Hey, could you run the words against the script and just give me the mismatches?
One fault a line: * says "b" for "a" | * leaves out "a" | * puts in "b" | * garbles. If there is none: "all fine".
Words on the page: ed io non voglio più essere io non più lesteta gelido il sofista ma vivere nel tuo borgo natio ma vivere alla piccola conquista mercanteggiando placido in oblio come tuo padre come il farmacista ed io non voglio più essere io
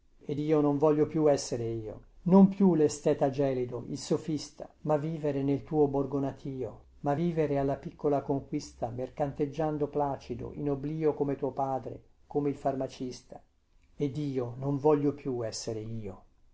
all fine